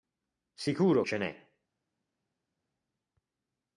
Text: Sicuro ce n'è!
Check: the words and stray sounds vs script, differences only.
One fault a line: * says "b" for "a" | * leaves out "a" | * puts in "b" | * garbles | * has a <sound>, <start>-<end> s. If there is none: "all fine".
all fine